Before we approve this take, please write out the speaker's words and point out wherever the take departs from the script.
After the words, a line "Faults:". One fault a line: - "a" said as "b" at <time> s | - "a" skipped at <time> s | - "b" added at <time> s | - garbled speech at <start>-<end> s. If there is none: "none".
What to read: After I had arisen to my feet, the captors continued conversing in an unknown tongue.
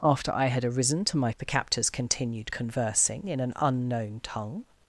After I had arisen to my the captors continued conversing in an unknown tongue.
Faults:
- "feet" skipped at 1.3 s